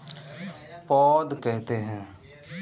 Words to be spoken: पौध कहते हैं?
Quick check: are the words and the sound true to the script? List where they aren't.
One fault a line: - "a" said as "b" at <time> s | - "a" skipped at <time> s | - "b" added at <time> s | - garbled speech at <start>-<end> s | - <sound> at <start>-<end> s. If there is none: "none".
none